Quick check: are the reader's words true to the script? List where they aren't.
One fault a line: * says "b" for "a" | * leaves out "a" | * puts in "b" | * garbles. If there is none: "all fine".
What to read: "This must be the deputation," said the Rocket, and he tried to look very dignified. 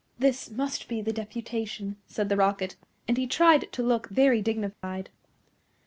all fine